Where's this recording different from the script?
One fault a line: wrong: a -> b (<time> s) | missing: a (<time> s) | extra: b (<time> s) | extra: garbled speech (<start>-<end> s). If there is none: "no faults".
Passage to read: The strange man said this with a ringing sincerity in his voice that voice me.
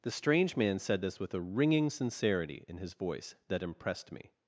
wrong: voice -> impressed (3.6 s)